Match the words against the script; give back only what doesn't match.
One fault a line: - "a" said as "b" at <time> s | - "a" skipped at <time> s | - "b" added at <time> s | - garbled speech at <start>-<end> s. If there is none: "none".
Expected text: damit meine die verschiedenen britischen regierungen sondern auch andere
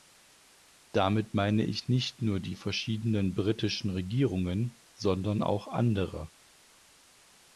- "ich nicht nur" added at 1.6 s